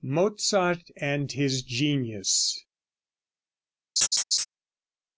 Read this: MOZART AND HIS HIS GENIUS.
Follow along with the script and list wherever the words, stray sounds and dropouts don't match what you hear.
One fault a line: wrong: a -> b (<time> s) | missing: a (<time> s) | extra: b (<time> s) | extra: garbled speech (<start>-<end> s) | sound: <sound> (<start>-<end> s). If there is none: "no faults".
missing: HIS (1.6 s)
sound: laugh (4.0-4.5 s)